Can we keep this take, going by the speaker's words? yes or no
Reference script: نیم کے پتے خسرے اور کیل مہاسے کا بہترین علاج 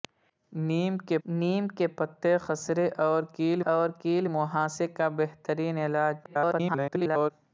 no